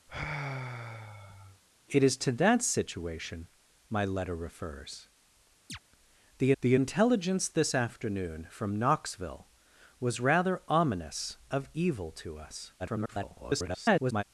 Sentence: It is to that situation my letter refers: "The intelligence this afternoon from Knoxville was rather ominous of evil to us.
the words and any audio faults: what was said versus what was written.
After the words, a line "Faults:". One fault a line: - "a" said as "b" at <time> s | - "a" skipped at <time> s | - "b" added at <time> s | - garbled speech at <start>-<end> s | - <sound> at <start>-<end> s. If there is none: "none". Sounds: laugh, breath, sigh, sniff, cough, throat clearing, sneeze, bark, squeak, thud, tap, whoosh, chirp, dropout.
It is to that situation my letter refers: "The the intelligence this afternoon from Knoxville was rather ominous of evil to us. [garbled]
Faults:
- sigh at 0.1-1.6 s
- chirp at 5.7-5.8 s
- "the" added at 6.6 s
- garbled speech at 12.8-14.2 s